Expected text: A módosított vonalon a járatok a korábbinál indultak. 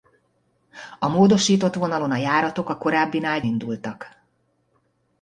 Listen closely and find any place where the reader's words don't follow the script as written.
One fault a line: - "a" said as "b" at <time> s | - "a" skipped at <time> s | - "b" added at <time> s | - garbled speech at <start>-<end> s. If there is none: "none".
none